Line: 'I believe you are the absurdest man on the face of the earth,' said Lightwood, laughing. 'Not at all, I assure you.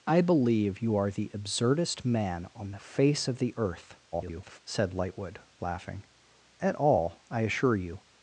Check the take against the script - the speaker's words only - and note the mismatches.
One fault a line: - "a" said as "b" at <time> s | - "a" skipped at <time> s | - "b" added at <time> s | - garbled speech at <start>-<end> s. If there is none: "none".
- garbled speech at 4.1-4.6 s
- "Not" skipped at 6.0 s